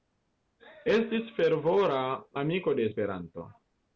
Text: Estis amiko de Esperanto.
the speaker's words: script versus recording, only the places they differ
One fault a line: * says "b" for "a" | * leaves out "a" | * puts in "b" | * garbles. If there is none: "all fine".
* puts in "fervora"